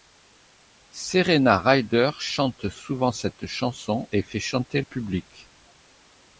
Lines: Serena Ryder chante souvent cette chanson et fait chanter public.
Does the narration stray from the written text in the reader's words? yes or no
no